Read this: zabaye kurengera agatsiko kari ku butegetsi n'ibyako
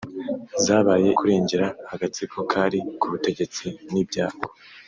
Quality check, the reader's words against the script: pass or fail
pass